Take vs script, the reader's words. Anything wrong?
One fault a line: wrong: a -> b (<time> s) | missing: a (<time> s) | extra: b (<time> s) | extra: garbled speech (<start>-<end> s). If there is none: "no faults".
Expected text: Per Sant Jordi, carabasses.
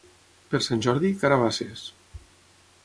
no faults